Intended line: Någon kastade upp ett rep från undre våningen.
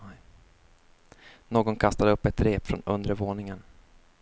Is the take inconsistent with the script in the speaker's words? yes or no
no